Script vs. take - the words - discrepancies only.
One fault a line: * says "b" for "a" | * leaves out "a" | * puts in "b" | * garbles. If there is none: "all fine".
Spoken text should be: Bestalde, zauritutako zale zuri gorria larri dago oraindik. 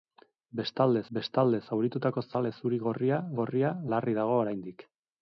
* puts in "bestalde"
* puts in "gorria"